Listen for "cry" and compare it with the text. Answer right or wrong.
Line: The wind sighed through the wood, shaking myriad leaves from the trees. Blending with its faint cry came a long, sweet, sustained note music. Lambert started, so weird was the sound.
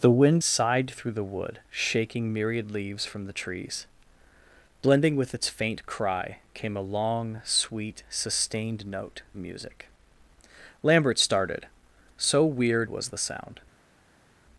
right